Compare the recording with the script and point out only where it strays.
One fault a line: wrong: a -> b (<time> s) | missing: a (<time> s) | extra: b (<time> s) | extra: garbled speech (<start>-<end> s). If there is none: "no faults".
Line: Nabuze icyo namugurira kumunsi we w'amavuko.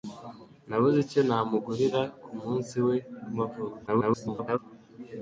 extra: garbled speech (3.9-4.6 s)